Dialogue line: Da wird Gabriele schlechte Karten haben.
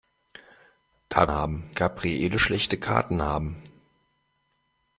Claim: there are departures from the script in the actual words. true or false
true